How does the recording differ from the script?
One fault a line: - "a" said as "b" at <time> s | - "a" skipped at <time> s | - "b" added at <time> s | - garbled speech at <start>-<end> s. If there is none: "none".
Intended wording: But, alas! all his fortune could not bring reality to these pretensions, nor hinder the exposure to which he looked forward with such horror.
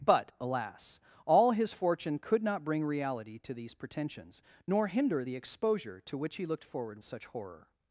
- "with" skipped at 7.0 s